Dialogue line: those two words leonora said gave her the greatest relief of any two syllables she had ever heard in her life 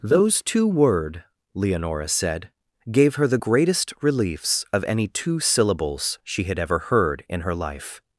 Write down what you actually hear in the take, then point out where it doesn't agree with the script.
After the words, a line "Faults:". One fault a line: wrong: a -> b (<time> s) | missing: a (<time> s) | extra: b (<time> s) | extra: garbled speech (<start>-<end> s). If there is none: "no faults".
those two word leonora said gave her the greatest reliefs of any two syllables she had ever heard in her life
Faults:
wrong: words -> word (0.7 s)
wrong: relief -> reliefs (4.0 s)